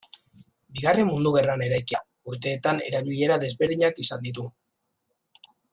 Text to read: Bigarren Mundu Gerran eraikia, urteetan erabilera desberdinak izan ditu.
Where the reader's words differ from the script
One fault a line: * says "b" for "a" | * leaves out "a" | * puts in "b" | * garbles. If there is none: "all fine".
all fine